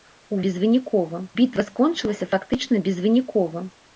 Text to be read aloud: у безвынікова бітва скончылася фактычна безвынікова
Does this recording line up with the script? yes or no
yes